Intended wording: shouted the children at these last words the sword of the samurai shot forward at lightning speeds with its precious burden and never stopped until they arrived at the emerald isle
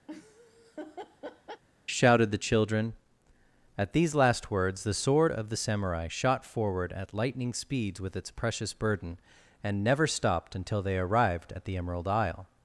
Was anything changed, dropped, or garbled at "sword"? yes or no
no